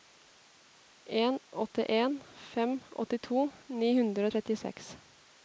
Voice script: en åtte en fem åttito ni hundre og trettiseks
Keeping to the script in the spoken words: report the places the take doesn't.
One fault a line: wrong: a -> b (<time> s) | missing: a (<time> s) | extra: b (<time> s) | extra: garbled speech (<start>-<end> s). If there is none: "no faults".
no faults